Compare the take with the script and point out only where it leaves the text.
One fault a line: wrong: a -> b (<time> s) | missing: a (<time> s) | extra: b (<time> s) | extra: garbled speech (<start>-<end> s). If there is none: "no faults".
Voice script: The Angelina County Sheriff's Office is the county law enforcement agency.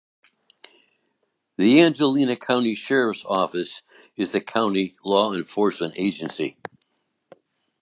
no faults